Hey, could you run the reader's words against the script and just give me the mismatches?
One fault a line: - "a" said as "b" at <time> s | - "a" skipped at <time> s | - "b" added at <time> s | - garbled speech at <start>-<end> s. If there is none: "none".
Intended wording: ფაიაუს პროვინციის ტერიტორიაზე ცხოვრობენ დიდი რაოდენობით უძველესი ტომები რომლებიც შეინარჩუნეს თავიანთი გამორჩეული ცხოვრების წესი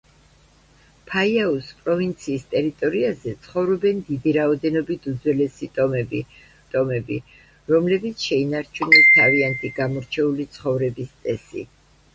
- "ტომები" added at 6.7 s